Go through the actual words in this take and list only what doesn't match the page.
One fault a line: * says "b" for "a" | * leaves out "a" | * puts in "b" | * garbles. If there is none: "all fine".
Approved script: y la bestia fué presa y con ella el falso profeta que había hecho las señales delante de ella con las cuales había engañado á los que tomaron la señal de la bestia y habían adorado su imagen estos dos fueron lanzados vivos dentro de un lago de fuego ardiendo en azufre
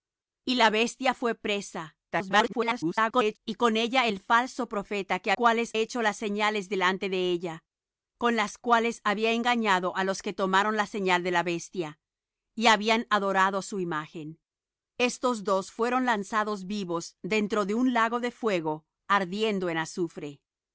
* garbles
* says "cuales" for "había"